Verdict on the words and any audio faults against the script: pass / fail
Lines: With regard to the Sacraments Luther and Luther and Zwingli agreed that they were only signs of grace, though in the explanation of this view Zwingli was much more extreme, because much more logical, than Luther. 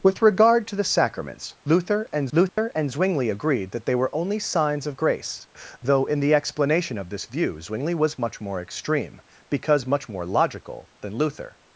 fail